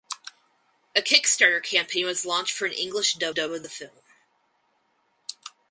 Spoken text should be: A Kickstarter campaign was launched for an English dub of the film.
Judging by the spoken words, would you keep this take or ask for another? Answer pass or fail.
fail